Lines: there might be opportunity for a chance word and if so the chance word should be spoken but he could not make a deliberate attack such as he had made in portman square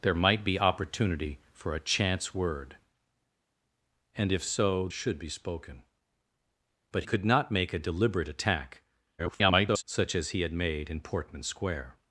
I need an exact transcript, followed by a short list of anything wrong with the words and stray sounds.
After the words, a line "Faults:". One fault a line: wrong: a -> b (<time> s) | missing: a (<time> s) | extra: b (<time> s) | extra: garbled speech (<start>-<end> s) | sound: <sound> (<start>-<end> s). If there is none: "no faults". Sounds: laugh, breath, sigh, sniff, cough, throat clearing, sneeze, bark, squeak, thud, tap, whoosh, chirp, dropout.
there might be opportunity for a chance word and if so should be spoken but could not make a deliberate attack [garbled] such as he had made in portman square
Faults:
missing: the chance word (4.9 s)
missing: he (7.0 s)
extra: garbled speech (9.2-9.8 s)